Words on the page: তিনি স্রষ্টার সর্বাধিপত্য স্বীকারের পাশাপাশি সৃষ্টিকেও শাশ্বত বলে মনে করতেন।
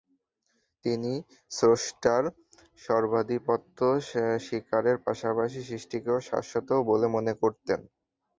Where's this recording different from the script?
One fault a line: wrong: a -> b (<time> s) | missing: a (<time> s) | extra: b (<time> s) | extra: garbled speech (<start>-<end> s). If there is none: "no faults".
no faults